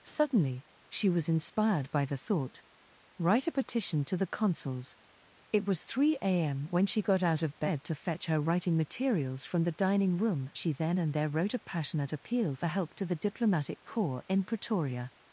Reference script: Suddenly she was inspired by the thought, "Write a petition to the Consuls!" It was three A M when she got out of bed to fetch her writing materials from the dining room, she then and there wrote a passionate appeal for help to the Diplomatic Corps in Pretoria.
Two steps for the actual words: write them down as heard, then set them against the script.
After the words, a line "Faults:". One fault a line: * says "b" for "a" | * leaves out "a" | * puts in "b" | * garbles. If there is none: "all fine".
Suddenly she was inspired by the thought, "Write a petition to the Consuls!" It was three A M when she got out of bed to fetch her writing materials from the dining room, she then and there wrote a passionate appeal for help to the Diplomatic Corps in Pretoria.
Faults:
all fine